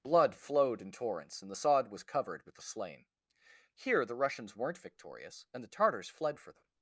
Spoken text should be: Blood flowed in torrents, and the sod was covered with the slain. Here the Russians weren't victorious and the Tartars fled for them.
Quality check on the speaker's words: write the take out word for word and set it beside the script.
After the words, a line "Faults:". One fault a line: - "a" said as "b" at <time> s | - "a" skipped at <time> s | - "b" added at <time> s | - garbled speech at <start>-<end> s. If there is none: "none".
Blood flowed in torrents, and the sod was covered with the slain. Here the Russians weren't victorious and the Tartars fled for them.
Faults:
none